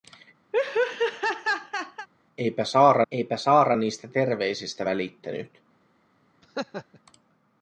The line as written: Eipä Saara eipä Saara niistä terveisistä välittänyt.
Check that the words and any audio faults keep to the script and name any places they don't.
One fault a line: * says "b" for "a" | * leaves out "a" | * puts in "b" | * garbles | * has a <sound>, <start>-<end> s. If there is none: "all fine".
* has a laugh, 0.5-2.1 s
* has a laugh, 6.4-7.0 s